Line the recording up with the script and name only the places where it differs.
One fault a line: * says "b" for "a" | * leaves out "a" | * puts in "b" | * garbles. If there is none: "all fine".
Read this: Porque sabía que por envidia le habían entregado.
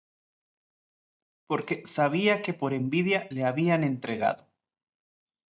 all fine